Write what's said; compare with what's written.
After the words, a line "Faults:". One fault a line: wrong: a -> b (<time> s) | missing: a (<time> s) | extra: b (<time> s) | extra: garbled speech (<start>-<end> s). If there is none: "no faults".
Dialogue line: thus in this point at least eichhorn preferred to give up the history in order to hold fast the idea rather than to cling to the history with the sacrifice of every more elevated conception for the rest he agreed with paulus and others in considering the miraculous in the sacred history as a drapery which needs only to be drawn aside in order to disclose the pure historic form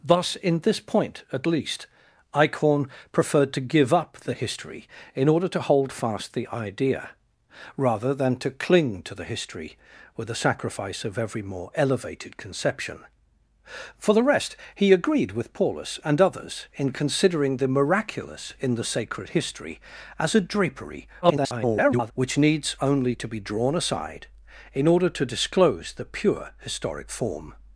thus in this point at least eichhorn preferred to give up the history in order to hold fast the idea rather than to cling to the history with the sacrifice of every more elevated conception for the rest he agreed with paulus and others in considering the miraculous in the sacred history as a drapery [garbled] which needs only to be drawn aside in order to disclose the pure historic form
Faults:
extra: garbled speech (21.2-22.1 s)